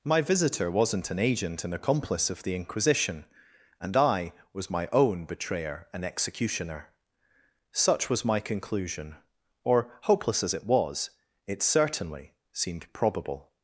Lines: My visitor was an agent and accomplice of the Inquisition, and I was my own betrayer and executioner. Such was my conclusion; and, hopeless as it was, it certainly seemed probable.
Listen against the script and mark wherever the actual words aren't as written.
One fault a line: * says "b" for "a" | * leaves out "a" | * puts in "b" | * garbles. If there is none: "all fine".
* says "wasn't" for "was"
* says "or" for "and"